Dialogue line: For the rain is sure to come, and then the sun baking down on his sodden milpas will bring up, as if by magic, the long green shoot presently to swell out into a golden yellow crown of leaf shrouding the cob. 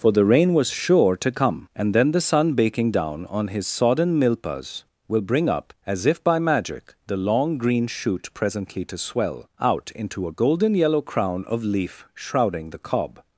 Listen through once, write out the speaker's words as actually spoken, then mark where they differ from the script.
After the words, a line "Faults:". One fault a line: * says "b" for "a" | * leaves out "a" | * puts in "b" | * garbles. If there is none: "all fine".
For the rain was sure to come, and then the sun baking down on his sodden milpas will bring up, as if by magic, the long green shoot presently to swell out into a golden yellow crown of leaf shrouding the cob.
Faults:
* says "was" for "is"